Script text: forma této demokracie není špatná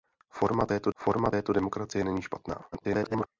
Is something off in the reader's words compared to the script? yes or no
yes